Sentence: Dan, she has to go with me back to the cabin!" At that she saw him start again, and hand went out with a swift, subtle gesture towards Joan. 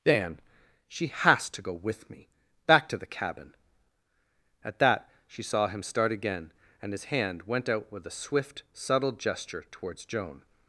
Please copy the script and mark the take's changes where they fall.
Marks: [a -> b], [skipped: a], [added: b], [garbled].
Dan, she has to go with me back to the cabin!" At that she saw him start again, and [added: his] hand went out with a swift, subtle gesture towards Joan.